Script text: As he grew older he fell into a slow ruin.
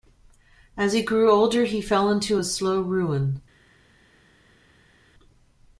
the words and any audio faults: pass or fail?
pass